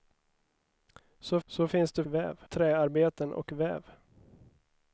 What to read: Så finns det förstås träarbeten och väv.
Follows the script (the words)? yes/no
no